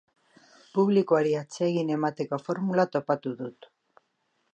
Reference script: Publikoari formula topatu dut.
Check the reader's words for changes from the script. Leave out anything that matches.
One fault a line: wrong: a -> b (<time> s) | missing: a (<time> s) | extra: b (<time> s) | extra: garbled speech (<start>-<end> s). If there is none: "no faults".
extra: atsegin emateko (1.4 s)